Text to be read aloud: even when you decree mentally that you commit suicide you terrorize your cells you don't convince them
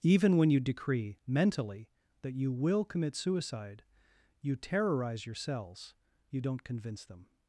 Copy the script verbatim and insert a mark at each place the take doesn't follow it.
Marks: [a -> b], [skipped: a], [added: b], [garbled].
even when you decree mentally that you [added: will] commit suicide you terrorize your cells you don't convince them